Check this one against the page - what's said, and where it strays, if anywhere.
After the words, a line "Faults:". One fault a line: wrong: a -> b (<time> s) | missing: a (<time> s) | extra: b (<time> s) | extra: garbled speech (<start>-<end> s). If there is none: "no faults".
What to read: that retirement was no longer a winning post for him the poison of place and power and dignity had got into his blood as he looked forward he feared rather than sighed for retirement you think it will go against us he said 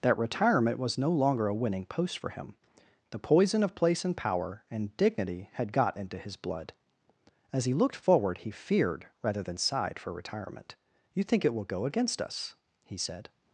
that retirement was no longer a winning post for him the poison of place and power and dignity had got into his blood as he looked forward he feared rather than sighed for retirement you think it will go against us he said
Faults:
no faults